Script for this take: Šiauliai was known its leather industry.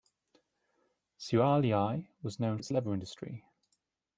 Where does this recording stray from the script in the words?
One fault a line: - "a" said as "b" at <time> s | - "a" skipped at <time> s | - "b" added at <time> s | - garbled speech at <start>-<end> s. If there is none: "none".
none